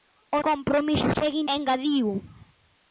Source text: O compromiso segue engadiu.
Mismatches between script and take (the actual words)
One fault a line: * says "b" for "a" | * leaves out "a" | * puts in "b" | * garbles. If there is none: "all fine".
all fine